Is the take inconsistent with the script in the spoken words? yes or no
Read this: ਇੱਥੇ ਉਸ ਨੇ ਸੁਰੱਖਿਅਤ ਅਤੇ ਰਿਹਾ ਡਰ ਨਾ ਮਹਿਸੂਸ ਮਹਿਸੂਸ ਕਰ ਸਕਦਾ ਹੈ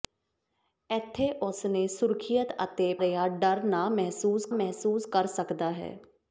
no